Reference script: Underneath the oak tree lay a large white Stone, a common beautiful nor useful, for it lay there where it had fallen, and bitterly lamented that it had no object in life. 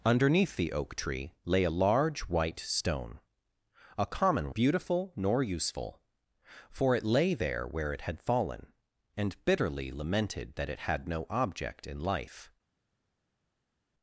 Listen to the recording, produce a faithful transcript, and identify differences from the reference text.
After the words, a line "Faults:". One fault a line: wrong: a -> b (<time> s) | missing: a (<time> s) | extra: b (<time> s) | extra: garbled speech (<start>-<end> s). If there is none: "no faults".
Underneath the oak tree lay a large white Stone, a common beautiful nor useful, for it lay there where it had fallen, and bitterly lamented that it had no object in life.
Faults:
no faults